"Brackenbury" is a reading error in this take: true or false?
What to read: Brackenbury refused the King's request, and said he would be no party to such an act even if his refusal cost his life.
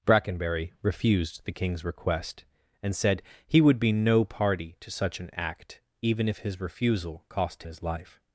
false